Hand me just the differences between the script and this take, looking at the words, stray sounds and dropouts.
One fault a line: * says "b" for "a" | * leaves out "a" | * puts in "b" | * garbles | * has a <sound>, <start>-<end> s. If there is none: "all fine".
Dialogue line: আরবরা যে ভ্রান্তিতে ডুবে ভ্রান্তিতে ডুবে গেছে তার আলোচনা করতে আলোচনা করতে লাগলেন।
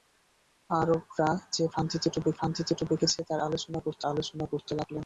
all fine